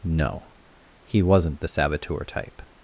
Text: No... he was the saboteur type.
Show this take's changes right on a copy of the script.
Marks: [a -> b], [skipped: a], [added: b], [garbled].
No... he [was -> wasn't] the saboteur type.